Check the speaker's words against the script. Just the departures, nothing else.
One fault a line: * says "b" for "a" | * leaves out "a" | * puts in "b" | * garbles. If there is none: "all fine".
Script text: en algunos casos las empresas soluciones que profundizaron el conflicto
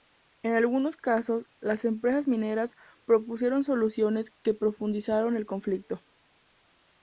* puts in "mineras propusieron"